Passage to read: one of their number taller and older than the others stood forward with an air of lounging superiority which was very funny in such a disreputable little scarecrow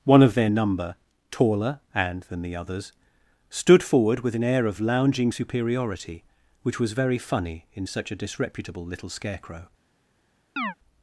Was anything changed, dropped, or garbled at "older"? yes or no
yes